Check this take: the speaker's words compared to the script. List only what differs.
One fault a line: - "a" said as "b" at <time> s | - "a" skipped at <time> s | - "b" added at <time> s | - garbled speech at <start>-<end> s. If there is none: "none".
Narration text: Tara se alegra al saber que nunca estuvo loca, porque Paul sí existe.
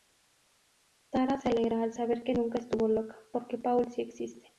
none